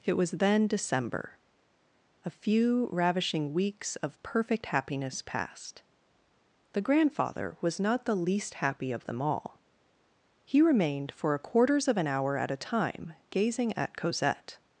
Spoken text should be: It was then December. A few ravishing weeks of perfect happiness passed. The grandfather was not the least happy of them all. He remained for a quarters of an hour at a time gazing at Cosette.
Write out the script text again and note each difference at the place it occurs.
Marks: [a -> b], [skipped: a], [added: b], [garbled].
It was then December. A few ravishing weeks of perfect happiness passed. The grandfather was not the least happy of them all. He remained for a quarters of an hour at a time gazing at Cosette.